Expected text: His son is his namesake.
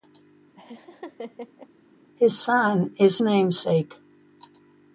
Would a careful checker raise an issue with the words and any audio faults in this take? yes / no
yes